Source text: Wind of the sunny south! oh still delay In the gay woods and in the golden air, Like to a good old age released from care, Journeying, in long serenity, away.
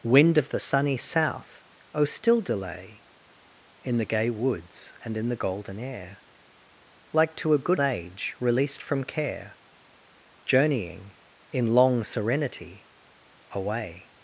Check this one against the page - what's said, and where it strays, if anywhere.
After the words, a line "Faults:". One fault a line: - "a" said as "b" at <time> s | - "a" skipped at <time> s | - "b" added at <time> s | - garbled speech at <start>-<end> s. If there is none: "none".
Wind of the sunny south! oh still delay In the gay woods and in the golden air, Like to a good age released from care, Journeying, in long serenity, away.
Faults:
- "old" skipped at 7.8 s